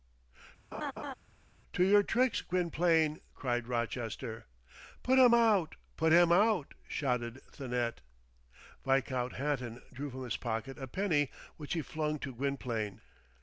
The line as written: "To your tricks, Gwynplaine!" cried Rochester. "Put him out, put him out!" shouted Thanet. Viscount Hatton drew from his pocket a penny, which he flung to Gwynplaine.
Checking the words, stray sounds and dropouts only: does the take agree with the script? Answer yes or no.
no